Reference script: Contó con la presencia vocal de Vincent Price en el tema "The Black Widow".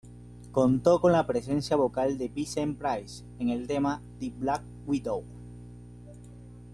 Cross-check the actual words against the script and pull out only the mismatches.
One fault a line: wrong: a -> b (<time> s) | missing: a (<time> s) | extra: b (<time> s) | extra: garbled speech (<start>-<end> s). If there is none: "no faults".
no faults